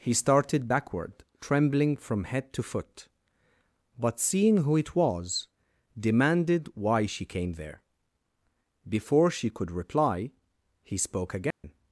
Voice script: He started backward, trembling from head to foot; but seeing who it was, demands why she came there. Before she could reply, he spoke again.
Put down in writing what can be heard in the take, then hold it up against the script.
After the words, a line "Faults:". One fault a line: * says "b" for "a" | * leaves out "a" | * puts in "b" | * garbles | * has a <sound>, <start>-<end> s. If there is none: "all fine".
He started backward, trembling from head to foot; but seeing who it was, demanded why she came there. Before she could reply, he spoke again.
Faults:
* says "demanded" for "demands"
* has a dropout, 11.5-11.6 s